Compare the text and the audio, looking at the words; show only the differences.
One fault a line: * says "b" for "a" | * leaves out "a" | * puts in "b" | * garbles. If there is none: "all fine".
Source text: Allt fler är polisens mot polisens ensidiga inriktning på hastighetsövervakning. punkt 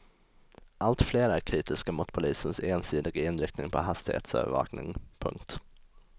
* says "kritiska" for "polisens"